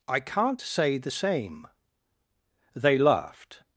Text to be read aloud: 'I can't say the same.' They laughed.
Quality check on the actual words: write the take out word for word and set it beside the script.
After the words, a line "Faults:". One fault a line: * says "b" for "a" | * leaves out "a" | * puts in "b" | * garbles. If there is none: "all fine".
'I can't say the same.' They laughed.
Faults:
all fine